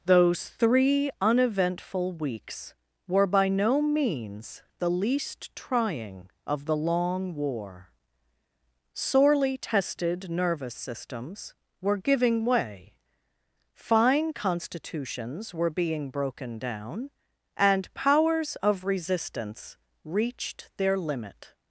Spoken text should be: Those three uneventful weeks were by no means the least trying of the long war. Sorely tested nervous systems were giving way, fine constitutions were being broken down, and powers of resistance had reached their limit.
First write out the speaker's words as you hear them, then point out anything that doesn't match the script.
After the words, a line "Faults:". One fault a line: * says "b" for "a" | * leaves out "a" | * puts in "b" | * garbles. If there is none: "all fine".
Those three uneventful weeks were by no means the least trying of the long war. Sorely tested nervous systems were giving way, fine constitutions were being broken down, and powers of resistance reached their limit.
Faults:
* leaves out "had"